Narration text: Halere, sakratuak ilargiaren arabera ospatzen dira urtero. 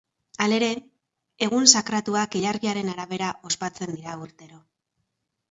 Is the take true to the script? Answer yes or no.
no